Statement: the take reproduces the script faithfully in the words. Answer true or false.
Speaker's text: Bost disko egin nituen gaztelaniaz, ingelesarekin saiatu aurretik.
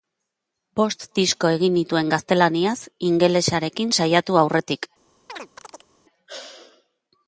true